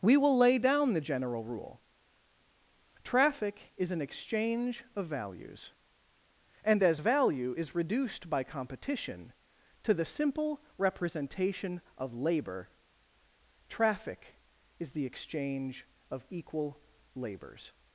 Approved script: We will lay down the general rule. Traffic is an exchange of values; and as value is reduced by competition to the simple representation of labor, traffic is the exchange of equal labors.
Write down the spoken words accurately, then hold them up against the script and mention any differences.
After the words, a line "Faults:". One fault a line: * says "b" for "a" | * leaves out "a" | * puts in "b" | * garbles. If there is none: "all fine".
We will lay down the general rule. Traffic is an exchange of values; and as value is reduced by competition to the simple representation of labor, traffic is the exchange of equal labors.
Faults:
all fine